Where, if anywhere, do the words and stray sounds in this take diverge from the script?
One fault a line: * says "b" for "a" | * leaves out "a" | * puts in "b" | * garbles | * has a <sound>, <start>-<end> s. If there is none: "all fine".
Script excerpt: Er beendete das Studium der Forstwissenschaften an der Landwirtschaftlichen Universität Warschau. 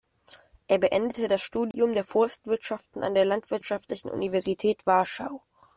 * has a dropout, 1.7-1.7 s